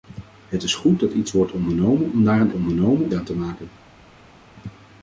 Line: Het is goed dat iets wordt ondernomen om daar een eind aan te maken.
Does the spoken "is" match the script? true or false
true